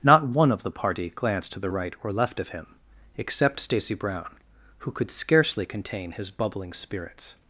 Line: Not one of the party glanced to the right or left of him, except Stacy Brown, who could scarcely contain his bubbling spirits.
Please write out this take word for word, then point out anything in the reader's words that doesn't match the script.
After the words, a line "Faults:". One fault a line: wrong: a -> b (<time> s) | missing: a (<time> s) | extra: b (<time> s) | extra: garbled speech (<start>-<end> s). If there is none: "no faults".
Not one of the party glanced to the right or left of him, except Stacy Brown, who could scarcely contain his bubbling spirits.
Faults:
no faults